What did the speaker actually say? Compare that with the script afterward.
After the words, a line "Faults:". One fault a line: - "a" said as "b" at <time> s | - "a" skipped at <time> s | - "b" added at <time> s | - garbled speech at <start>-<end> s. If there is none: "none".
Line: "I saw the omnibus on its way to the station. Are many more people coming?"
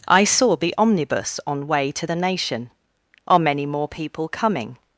"I saw the omnibus on way to the nation. Are many more people coming?"
Faults:
- "its" skipped at 1.7 s
- "station" said as "nation" at 2.1 s